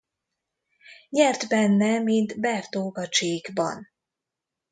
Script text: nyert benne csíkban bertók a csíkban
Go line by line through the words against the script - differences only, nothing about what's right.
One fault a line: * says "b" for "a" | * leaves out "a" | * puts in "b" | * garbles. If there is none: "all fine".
* says "mint" for "csíkban"